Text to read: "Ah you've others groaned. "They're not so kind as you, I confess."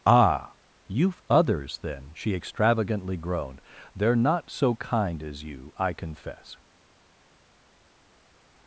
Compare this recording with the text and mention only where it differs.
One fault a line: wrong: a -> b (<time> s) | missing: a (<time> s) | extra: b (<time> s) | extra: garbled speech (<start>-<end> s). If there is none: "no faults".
extra: then she extravagantly (1.8 s)